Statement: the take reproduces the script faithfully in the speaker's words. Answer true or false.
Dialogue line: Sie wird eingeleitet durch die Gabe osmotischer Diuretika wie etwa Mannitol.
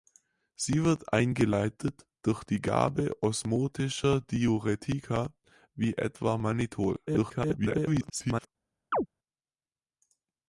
false